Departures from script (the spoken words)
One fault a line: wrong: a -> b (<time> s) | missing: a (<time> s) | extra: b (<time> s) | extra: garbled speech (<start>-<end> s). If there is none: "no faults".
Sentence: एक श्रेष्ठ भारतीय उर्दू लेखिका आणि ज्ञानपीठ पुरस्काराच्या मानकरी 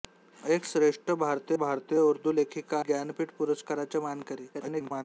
extra: भारतीय (1.6 s)
missing: आणि (2.8 s)
extra: garbled speech (4.5-5.0 s)